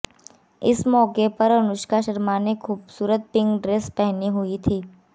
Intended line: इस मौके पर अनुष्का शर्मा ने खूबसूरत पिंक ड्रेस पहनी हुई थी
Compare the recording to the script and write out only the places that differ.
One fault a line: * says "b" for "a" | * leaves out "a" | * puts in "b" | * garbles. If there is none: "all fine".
all fine